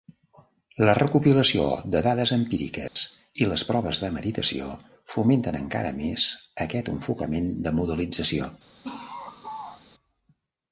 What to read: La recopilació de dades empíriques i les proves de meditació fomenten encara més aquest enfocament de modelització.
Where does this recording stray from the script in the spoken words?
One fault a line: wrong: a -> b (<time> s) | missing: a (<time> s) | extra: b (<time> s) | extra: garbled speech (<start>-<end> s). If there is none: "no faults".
no faults